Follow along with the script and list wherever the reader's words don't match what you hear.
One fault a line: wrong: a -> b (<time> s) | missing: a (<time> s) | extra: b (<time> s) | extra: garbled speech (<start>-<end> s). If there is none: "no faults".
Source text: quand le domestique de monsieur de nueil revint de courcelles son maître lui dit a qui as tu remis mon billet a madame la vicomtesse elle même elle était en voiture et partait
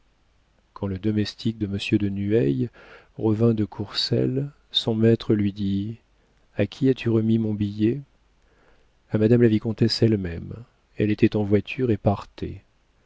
no faults